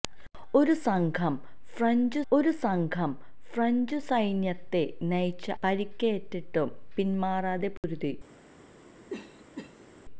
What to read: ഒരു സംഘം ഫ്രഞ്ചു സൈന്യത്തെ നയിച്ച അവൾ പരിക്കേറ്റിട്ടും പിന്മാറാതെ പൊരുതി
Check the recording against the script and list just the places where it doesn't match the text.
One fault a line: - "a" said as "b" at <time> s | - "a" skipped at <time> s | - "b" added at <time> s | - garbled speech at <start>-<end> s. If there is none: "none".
- "ഒരു സംഘം ഫ്രഞ്ചു" added at 2.3 s
- "അവൾ" skipped at 5.4 s